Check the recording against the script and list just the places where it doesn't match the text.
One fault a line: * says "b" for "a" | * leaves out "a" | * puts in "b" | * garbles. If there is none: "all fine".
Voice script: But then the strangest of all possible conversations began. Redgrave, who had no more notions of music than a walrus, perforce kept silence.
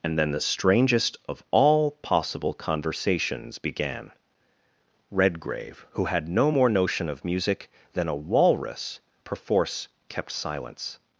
* says "And" for "But"
* says "notion" for "notions"